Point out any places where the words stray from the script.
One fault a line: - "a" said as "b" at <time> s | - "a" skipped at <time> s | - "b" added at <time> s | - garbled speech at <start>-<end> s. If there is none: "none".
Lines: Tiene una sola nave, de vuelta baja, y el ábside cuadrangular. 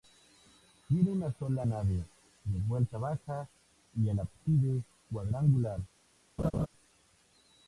none